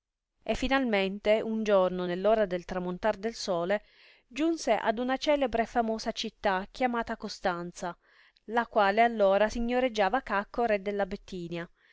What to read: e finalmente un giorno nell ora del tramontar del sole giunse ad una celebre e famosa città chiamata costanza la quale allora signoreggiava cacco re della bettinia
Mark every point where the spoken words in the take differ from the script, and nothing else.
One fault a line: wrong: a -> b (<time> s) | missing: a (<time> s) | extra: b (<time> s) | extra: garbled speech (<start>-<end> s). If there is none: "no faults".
no faults